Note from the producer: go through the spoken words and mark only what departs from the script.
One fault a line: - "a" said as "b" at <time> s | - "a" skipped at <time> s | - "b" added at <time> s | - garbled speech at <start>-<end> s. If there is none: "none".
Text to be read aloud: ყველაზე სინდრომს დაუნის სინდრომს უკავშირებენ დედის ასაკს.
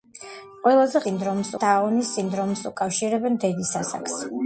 none